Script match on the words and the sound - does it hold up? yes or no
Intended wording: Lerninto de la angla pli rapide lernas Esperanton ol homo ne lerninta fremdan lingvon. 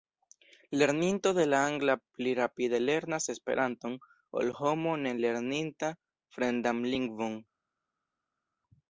yes